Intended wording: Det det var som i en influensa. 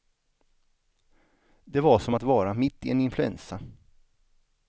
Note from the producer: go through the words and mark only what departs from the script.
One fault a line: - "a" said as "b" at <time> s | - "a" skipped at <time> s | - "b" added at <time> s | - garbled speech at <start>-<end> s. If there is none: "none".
- "det" skipped at 1.8 s
- "att vara mitt" added at 2.1 s